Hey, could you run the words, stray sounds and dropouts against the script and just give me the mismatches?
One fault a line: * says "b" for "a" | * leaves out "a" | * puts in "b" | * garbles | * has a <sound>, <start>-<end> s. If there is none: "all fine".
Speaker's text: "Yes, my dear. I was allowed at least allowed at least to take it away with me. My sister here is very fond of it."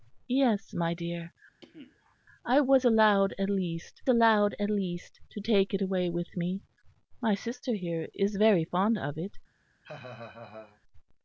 * has a cough, 1.6-2.2 s
* has a laugh, 9.8-10.8 s